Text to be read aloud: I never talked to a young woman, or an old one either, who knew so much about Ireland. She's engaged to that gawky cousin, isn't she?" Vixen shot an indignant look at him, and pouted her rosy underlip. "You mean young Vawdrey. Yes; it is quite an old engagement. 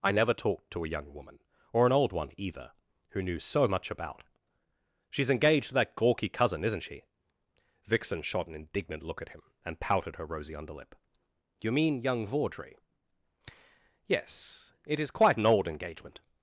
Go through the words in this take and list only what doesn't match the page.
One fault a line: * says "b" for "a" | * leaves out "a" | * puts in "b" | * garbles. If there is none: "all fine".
* leaves out "Ireland"